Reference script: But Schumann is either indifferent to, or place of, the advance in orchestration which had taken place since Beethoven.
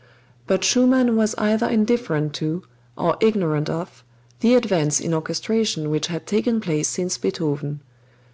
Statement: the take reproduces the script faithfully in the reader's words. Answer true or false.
false